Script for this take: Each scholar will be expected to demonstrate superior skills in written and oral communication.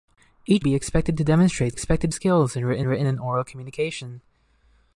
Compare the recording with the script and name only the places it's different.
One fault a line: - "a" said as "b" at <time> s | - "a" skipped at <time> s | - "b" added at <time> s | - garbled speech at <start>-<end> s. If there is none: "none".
- "scholar will" skipped at 0.7 s
- "superior" said as "expected" at 1.7 s
- "written" added at 2.9 s